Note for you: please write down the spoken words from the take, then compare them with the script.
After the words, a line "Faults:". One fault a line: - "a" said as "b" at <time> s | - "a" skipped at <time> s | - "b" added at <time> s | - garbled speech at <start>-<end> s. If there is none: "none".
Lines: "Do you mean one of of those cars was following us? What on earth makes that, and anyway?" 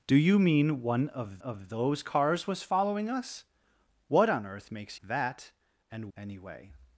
"Do you mean one of of those cars was following us? What on earth makes that, and anyway?"
Faults:
none